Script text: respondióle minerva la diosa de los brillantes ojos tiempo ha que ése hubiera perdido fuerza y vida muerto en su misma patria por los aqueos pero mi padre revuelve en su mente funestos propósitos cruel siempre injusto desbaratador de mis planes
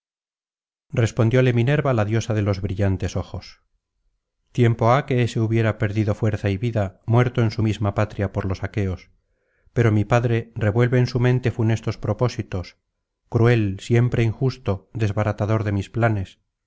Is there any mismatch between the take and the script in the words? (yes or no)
no